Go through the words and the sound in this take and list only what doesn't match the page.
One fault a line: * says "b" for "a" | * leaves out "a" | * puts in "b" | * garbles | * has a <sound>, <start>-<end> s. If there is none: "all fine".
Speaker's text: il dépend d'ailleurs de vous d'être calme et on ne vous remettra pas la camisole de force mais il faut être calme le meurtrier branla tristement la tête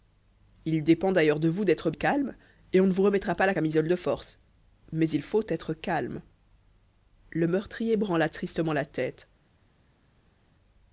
all fine